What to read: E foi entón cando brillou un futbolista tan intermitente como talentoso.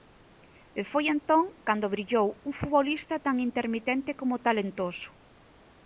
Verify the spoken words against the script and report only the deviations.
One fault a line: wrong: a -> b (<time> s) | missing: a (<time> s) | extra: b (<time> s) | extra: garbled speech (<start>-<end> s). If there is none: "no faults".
no faults